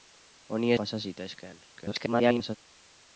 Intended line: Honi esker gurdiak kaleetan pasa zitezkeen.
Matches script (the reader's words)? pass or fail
fail